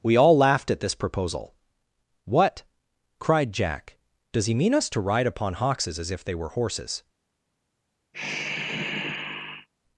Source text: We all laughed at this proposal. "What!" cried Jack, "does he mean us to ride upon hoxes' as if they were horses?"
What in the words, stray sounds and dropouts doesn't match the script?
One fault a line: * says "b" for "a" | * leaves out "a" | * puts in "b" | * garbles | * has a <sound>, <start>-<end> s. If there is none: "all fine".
* has a sigh, 8.1-9.7 s